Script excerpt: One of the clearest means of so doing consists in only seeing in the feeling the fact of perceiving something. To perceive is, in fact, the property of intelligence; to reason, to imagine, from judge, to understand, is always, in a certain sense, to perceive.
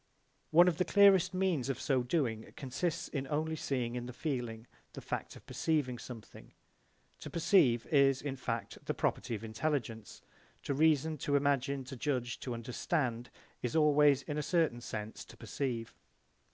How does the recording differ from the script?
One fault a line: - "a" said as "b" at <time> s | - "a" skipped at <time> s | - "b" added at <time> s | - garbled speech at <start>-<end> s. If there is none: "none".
- "from" said as "to" at 11.8 s